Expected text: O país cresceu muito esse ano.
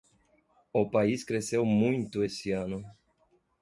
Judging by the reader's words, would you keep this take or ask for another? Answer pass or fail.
pass